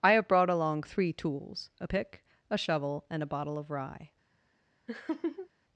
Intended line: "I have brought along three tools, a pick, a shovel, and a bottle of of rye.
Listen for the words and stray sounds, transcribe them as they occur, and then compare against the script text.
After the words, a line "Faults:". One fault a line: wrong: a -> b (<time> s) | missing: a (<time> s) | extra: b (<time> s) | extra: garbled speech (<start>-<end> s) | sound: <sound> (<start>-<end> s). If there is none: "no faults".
"I have brought along three tools, a pick, a shovel, and a bottle of rye.
Faults:
missing: of (3.7 s)
sound: laugh (4.9-5.5 s)